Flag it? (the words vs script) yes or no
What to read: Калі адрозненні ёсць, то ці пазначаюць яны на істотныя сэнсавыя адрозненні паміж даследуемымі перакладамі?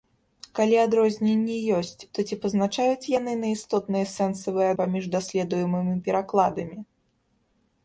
yes